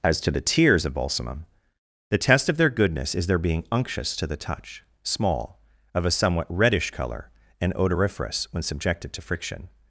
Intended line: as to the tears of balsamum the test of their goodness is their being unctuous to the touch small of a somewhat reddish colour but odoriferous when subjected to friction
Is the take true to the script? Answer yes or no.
no